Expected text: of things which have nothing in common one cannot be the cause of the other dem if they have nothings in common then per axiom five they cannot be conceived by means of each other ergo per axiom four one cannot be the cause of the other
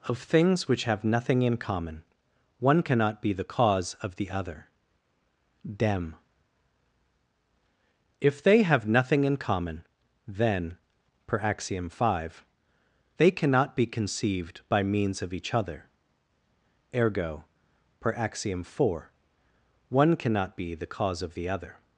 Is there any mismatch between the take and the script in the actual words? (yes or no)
yes